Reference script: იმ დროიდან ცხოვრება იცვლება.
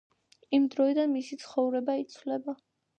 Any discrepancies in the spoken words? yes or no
yes